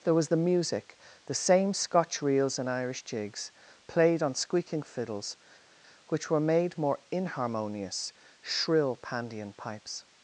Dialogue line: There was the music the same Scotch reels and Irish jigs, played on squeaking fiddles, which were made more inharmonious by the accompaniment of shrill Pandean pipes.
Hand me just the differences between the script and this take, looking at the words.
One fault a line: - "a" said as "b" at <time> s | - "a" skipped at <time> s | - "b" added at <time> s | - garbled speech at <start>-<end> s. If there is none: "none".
- "by the accompaniment of" skipped at 8.1 s